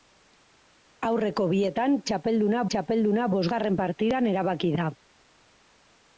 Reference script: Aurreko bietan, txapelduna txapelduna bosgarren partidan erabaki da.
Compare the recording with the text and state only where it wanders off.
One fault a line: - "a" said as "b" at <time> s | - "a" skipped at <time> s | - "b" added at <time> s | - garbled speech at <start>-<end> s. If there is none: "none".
none